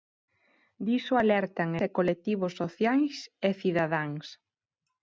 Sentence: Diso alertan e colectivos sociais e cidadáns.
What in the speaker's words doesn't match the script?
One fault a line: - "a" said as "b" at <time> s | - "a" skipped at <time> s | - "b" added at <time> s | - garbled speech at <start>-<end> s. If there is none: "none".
none